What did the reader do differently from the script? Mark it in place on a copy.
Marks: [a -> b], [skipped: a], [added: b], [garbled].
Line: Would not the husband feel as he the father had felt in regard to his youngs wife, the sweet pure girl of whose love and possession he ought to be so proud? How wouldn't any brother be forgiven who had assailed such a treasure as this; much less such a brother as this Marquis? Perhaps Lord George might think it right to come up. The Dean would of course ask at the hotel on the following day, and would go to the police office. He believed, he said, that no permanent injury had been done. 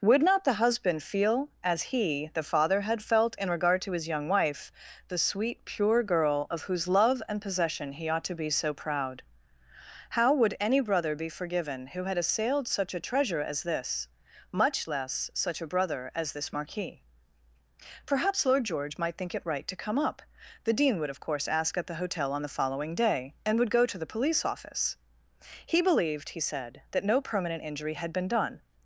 Would not the husband feel as he the father had felt in regard to his [youngs -> young] wife, the sweet pure girl of whose love and possession he ought to be so proud? How [wouldn't -> would] any brother be forgiven who had assailed such a treasure as this; much less such a brother as this Marquis? Perhaps Lord George might think it right to come up. The Dean would of course ask at the hotel on the following day, and would go to the police office. He believed, he said, that no permanent injury had been done.